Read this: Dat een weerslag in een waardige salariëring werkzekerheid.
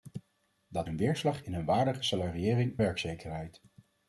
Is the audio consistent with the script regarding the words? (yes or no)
yes